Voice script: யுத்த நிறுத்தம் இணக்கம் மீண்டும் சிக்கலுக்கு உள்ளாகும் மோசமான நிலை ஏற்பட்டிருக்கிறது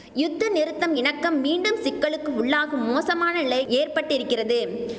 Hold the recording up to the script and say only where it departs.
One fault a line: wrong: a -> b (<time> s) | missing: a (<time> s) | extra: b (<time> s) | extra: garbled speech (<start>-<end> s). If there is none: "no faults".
no faults